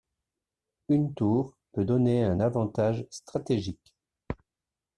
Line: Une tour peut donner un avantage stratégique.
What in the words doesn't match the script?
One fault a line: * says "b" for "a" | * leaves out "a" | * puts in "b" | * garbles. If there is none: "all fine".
all fine